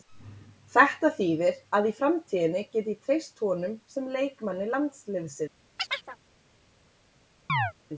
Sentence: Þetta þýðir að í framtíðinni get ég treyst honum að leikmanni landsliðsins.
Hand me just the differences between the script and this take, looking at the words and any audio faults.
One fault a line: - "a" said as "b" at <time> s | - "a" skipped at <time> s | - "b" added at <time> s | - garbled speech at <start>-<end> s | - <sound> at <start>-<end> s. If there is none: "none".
- "að" said as "sem" at 4.0 s
- chirp at 5.8-6.2 s
- chirp at 7.5-7.7 s